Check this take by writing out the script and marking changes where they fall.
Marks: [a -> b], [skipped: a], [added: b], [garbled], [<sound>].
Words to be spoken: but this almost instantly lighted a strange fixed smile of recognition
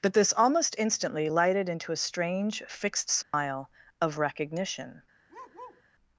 but this almost instantly lighted [added: into] a strange fixed smile [dropout] of recognition [bark]